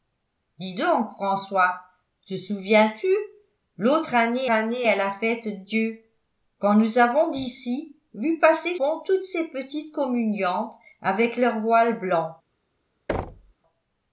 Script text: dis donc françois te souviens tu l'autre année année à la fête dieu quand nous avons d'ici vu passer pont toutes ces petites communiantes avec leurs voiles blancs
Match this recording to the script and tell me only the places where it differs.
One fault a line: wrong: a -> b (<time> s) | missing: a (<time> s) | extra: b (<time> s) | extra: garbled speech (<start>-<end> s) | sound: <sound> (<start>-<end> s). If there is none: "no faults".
sound: thud (13.1-13.5 s)